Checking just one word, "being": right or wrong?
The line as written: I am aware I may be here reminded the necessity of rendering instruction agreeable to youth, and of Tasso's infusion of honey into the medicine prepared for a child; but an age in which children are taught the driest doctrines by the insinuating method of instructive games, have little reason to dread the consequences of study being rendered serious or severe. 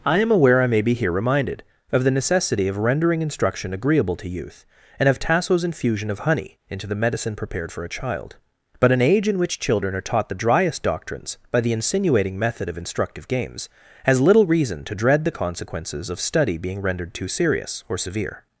right